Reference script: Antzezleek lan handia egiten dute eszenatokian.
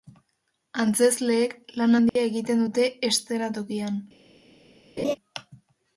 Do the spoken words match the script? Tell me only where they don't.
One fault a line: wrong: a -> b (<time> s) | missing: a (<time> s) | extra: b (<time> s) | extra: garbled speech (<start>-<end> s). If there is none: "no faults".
no faults